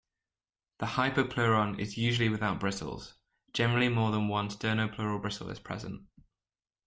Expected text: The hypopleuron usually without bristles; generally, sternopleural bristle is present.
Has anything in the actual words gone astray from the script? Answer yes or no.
yes